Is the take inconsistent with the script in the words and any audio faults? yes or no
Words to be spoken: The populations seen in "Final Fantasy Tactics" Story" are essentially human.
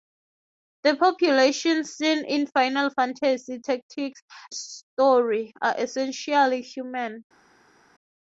no